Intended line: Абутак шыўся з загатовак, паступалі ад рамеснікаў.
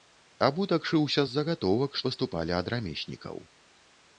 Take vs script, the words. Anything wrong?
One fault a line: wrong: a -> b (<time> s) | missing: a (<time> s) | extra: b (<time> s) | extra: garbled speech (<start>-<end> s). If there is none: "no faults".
no faults